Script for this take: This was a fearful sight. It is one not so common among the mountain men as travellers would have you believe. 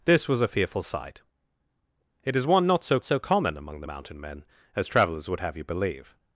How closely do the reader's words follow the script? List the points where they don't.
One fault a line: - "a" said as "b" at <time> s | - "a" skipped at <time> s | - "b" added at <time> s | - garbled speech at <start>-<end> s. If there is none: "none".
- "so" added at 3.0 s